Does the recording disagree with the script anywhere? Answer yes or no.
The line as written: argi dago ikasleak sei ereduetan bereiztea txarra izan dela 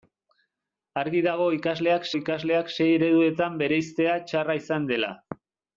yes